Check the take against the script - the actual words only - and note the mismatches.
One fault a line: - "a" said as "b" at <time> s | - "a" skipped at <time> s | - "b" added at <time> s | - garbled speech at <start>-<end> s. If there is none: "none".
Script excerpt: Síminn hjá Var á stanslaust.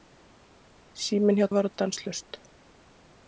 none